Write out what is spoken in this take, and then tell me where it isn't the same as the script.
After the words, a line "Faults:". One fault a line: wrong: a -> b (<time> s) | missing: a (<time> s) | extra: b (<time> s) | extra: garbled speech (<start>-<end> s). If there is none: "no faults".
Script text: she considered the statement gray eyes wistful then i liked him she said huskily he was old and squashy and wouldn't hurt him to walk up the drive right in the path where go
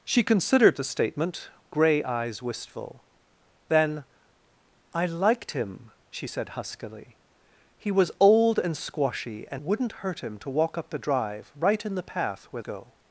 she considered the statement gray eyes wistful then i liked him she said huskily he was old and squashy and wouldn't hurt him to walk up the drive right in the path where go
Faults:
no faults